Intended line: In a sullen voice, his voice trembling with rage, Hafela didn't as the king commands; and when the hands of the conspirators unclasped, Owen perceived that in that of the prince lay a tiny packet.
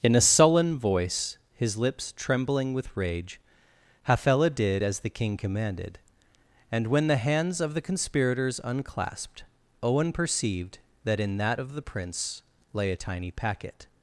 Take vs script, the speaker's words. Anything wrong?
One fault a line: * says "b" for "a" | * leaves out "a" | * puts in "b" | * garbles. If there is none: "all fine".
* says "lips" for "voice"
* says "did" for "didn't"
* says "commanded" for "commands"